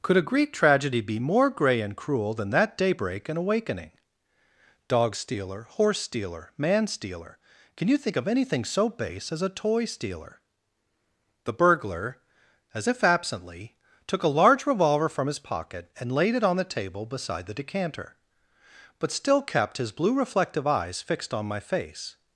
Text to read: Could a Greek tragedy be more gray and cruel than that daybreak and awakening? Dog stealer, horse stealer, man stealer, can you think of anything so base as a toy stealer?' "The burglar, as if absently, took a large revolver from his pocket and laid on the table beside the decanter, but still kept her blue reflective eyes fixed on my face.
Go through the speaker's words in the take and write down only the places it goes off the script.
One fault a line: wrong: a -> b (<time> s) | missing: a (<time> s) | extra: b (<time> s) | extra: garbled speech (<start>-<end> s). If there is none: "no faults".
extra: it (16.3 s)
wrong: her -> his (19.8 s)